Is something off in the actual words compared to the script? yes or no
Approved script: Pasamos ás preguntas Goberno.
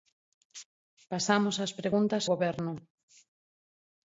no